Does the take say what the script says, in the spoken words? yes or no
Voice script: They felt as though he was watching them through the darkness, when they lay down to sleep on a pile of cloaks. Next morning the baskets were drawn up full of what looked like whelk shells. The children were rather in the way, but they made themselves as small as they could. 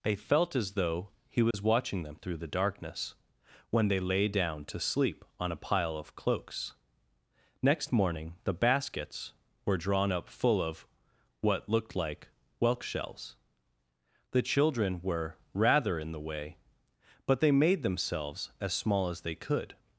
yes